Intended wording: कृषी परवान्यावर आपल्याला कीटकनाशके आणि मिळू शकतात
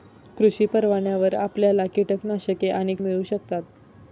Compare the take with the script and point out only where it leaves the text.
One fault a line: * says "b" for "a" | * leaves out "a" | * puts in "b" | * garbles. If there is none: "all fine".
all fine